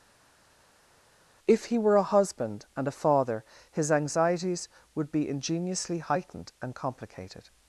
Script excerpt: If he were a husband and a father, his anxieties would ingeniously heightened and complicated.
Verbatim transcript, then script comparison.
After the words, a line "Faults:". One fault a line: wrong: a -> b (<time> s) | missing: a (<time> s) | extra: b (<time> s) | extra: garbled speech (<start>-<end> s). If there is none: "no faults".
If he were a husband and a father, his anxieties would be ingeniously heightened and complicated.
Faults:
extra: be (5.1 s)